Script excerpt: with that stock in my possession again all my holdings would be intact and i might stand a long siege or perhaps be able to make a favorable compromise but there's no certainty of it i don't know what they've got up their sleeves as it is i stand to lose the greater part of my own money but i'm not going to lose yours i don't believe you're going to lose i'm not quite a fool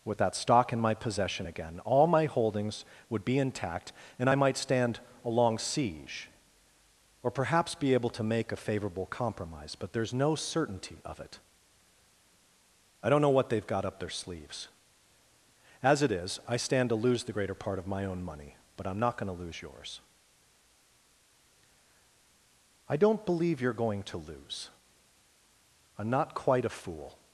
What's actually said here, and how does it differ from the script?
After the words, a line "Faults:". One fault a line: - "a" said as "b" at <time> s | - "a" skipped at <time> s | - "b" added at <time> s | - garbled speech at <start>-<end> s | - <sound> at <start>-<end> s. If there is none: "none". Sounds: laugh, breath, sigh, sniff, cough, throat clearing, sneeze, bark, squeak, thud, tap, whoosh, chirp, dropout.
with that stock in my possession again all my holdings would be intact and i might stand a long siege or perhaps be able to make a favorable compromise but there's no certainty of it i don't know what they've got up their sleeves as it is i stand to lose the greater part of my own money but i'm not going to lose yours i don't believe you're going to lose i'm not quite a fool
Faults:
none